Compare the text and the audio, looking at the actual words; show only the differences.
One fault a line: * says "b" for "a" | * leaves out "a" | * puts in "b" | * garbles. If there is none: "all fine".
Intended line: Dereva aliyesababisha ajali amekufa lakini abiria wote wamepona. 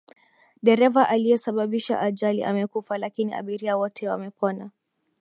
all fine